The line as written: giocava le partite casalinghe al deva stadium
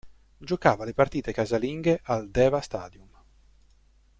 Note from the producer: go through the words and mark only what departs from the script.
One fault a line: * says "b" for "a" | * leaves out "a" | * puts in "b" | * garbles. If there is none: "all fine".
all fine